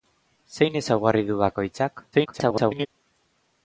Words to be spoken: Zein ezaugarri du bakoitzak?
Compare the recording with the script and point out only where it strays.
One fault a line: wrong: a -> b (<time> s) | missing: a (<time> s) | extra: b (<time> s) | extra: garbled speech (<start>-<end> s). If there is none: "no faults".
extra: garbled speech (2.1-2.9 s)